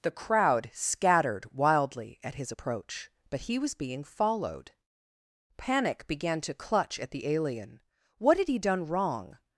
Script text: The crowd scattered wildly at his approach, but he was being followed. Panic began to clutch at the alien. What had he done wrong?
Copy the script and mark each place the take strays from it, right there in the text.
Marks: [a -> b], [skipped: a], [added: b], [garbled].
The crowd scattered wildly at his approach, but he was being followed. Panic began to clutch at the alien. What had he done wrong?